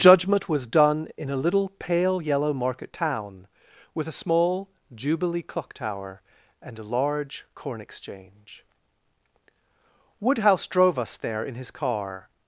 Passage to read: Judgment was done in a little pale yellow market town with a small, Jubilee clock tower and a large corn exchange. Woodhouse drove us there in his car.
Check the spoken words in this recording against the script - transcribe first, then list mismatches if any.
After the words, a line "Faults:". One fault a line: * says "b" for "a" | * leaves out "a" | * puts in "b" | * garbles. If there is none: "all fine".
Judgment was done in a little pale yellow market town with a small, Jubilee clock tower and a large corn exchange. Woodhouse drove us there in his car.
Faults:
all fine